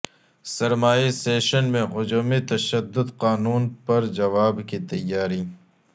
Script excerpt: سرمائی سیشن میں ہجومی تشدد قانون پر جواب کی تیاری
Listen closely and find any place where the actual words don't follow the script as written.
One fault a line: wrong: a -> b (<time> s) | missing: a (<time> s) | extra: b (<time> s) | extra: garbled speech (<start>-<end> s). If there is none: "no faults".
no faults